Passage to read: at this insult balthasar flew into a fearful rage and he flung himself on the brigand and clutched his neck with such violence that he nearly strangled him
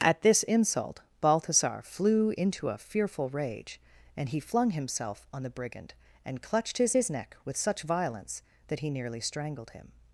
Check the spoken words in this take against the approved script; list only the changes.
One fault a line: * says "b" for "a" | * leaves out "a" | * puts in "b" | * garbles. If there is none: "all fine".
* puts in "his"